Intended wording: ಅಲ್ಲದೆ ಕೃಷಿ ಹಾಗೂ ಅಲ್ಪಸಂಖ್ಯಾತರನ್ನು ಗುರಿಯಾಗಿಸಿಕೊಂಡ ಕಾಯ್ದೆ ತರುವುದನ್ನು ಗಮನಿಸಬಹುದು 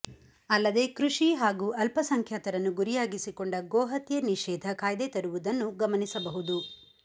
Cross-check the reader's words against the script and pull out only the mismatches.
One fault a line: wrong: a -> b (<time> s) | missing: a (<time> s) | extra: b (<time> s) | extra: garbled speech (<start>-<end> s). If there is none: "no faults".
extra: ಗೋಹತ್ಯೆ ನಿಷೇಧ (3.7 s)